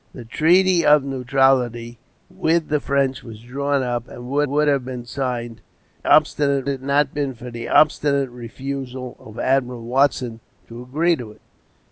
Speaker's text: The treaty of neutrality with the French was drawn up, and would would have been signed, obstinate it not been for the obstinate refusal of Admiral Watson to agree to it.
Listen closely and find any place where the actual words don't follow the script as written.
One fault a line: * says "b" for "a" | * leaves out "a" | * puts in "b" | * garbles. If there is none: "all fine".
all fine